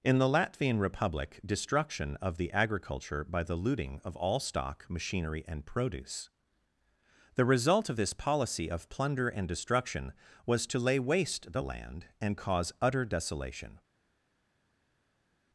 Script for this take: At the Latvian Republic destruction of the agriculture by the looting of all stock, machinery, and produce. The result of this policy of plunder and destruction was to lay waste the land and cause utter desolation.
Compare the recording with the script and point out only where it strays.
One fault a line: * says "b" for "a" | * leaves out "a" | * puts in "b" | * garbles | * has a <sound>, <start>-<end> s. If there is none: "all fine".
* says "In" for "At"